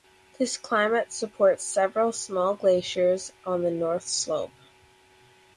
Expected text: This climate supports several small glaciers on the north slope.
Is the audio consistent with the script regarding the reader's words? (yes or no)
yes